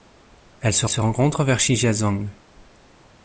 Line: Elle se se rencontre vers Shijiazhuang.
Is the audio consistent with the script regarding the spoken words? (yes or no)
yes